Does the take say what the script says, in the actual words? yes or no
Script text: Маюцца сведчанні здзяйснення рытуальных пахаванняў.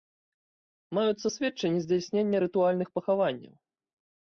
yes